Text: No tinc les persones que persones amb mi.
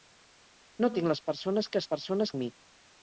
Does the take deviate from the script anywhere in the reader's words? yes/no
no